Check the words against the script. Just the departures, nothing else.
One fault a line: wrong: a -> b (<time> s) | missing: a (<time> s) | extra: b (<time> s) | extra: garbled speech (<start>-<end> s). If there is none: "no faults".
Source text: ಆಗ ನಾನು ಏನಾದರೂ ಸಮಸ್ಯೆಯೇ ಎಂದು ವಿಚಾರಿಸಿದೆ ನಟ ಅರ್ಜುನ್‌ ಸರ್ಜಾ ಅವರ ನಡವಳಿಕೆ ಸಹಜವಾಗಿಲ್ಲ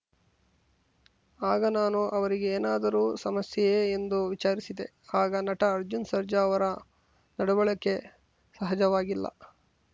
extra: ಅವರಿಗೆ (2.1 s)
extra: ಆಗ (5.2 s)